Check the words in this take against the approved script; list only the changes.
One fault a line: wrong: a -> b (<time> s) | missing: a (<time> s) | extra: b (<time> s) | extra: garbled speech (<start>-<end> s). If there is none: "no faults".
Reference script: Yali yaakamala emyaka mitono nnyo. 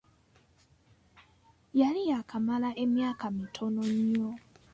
no faults